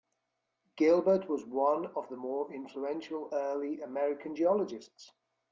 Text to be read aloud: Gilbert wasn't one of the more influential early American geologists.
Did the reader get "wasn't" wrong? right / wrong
wrong